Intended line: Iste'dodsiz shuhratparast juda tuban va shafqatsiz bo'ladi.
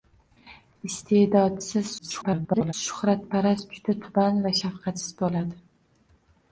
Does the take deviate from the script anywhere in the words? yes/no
yes